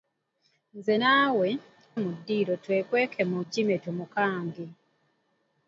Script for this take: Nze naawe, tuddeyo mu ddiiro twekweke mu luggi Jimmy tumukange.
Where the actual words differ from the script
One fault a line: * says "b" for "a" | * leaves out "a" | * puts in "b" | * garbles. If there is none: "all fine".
* leaves out "tuddeyo"
* leaves out "luggi"